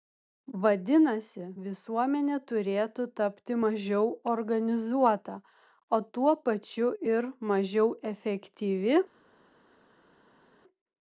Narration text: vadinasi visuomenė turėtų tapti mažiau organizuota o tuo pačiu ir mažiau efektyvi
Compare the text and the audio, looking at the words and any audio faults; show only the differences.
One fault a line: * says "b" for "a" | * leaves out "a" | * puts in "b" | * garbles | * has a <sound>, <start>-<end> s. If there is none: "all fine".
all fine